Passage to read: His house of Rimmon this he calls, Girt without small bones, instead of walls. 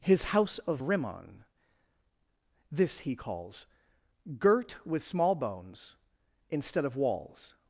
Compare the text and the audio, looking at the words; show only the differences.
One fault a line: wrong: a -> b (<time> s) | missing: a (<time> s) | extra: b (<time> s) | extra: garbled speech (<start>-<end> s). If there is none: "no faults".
wrong: without -> with (4.8 s)